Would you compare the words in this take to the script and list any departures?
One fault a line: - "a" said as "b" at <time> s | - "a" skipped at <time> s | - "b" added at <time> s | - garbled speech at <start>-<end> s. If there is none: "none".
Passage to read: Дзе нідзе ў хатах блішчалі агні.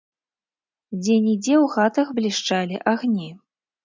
none